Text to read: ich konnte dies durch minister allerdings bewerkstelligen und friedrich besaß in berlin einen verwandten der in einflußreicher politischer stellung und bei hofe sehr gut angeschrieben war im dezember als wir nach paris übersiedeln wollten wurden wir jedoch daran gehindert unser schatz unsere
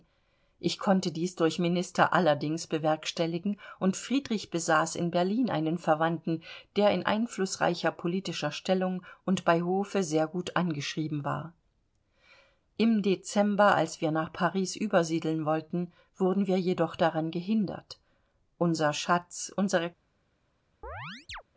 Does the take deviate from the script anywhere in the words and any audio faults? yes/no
yes